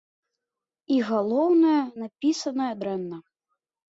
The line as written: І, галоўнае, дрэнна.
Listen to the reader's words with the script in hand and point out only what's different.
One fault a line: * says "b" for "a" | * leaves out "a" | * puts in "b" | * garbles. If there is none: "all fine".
* puts in "напісаная"